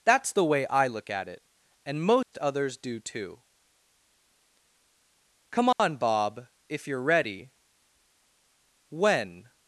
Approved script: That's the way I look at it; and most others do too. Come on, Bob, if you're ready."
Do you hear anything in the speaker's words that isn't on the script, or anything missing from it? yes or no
yes